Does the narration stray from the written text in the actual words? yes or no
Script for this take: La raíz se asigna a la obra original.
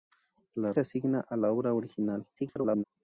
yes